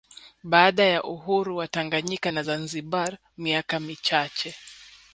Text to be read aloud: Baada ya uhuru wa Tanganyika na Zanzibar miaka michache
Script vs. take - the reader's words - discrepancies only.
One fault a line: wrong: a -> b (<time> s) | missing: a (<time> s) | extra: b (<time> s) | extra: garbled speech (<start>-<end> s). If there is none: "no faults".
no faults